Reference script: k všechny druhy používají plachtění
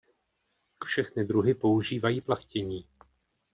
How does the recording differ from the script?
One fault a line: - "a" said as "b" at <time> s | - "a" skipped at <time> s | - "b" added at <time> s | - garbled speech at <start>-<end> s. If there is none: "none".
none